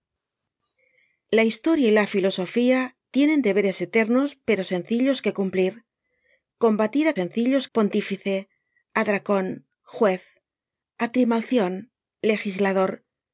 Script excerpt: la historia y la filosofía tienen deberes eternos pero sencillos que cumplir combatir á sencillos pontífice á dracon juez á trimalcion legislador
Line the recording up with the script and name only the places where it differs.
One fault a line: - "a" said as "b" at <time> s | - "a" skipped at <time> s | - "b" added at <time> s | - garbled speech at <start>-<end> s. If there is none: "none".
none